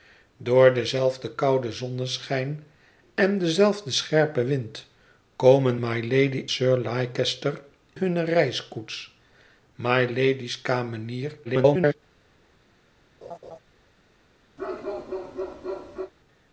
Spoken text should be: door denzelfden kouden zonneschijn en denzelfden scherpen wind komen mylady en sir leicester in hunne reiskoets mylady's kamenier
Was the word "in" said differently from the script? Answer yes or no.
yes